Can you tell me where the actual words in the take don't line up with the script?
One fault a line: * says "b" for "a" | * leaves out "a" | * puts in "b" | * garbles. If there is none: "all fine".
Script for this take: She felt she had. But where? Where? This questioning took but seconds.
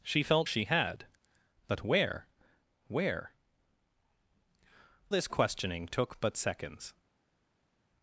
all fine